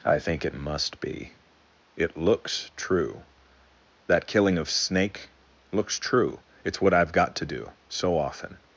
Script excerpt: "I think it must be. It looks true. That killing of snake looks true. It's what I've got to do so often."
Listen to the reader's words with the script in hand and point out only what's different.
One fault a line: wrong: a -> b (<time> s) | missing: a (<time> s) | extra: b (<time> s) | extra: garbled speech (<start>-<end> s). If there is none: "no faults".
no faults